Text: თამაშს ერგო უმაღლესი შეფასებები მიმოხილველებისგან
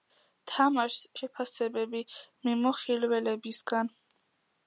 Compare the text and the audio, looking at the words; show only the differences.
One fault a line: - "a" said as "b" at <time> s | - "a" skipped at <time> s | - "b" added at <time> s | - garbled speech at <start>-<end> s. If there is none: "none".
- "ერგო უმაღლესი" skipped at 1.0 s